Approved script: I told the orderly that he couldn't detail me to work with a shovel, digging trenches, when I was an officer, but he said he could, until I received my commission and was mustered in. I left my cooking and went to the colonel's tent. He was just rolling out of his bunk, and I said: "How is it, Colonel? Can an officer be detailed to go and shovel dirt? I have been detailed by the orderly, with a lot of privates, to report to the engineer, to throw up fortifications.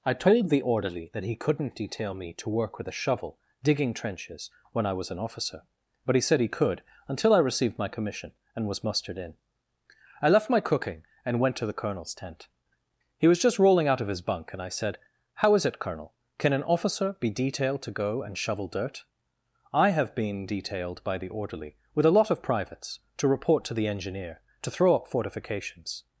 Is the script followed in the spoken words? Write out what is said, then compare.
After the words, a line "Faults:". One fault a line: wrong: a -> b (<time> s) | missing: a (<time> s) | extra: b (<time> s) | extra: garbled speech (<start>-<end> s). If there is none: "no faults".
I told the orderly that he couldn't detail me to work with a shovel, digging trenches, when I was an officer, but he said he could, until I received my commission and was mustered in. I left my cooking and went to the colonel's tent. He was just rolling out of his bunk, and I said: "How is it, Colonel? Can an officer be detailed to go and shovel dirt? I have been detailed by the orderly, with a lot of privates, to report to the engineer, to throw up fortifications.
Faults:
no faults